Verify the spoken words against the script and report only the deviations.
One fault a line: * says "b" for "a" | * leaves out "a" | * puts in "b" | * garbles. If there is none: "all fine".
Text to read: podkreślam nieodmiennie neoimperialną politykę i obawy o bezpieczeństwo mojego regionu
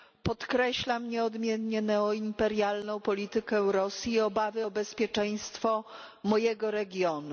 * puts in "rosji"